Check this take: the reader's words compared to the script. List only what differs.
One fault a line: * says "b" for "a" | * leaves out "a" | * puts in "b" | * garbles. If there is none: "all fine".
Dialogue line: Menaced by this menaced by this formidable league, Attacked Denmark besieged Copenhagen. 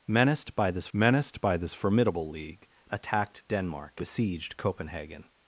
all fine